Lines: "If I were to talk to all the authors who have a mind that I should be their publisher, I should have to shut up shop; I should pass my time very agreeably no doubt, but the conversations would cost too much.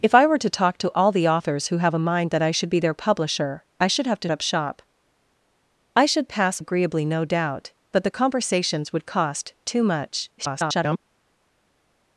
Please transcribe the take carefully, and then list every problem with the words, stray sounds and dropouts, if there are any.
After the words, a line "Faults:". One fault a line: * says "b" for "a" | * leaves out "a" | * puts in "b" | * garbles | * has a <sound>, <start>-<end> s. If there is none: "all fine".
"If I were to talk to all the authors who have a mind that I should be their publisher, I should have to up shop; I should pass agreeably no doubt, but the conversations would cost too much. [garbled]
Faults:
* leaves out "shut"
* leaves out "my time very"
* garbles